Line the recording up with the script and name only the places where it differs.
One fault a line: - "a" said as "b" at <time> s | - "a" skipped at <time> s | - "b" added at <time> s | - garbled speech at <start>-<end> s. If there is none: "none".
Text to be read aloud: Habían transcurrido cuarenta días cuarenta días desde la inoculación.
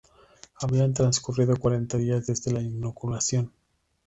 - "cuarenta días" skipped at 2.3 s